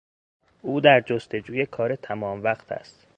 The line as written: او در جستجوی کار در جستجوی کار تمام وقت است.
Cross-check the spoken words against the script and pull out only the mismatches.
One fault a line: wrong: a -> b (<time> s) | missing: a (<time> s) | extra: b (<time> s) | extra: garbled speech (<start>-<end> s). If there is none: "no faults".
missing: در جستجوی کار (2.0 s)